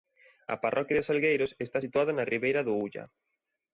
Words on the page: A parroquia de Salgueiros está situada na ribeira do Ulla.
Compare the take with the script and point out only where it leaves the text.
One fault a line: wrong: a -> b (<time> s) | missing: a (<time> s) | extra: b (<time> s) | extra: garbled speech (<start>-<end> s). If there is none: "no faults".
no faults